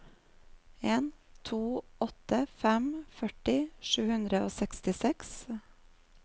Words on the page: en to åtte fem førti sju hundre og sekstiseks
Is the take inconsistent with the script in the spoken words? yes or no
no